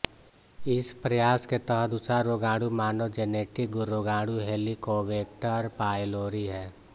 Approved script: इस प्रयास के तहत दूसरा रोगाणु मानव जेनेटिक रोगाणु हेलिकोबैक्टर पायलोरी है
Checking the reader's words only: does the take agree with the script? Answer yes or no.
yes